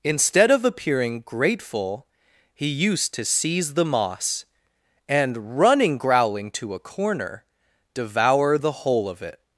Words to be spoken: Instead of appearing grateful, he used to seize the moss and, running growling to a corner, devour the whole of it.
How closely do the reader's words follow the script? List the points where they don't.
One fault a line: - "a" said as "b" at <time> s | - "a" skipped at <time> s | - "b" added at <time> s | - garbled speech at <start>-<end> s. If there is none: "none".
none